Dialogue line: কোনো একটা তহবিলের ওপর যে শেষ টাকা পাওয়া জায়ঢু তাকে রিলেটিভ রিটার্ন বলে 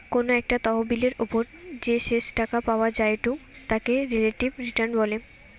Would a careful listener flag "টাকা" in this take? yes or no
no